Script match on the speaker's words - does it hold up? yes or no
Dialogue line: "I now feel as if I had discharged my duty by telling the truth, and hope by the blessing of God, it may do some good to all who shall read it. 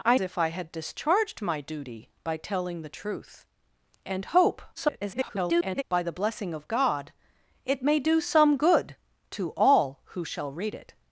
no